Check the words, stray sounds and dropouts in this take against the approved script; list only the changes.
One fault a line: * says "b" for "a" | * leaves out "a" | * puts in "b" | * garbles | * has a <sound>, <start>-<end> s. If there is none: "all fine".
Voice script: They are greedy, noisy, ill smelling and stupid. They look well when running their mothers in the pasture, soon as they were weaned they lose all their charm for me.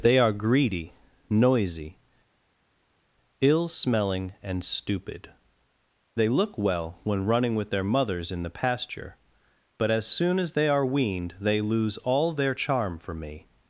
* puts in "with"
* puts in "but as"
* says "are" for "were"